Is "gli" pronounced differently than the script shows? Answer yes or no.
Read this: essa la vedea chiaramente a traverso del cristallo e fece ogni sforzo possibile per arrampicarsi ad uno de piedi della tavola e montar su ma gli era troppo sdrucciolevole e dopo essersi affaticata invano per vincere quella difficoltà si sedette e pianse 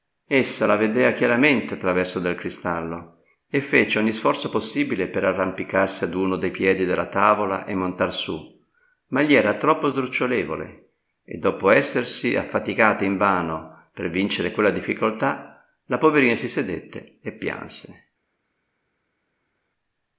no